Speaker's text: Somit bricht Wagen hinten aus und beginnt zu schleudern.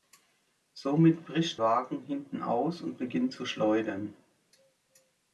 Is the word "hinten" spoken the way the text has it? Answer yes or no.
yes